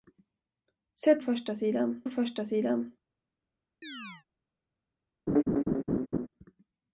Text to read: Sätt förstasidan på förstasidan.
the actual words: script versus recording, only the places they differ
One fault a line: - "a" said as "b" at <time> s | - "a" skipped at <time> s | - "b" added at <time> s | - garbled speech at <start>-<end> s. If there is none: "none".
none